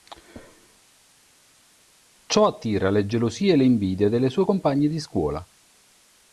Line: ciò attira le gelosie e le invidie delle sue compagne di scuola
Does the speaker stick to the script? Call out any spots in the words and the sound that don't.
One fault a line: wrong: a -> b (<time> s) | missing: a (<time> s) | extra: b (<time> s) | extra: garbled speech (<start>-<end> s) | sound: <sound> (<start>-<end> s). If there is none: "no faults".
no faults